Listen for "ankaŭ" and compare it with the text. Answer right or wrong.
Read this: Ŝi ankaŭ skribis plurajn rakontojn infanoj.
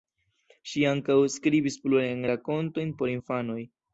right